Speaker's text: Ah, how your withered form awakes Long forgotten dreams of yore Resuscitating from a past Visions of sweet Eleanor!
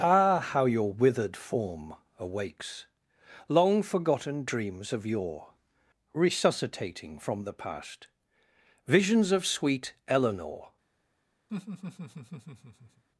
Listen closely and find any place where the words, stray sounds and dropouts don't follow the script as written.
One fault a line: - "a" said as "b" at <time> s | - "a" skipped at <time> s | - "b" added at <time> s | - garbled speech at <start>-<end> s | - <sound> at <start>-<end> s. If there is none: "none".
- "a" said as "the" at 7.4 s
- laugh at 11.5-13.0 s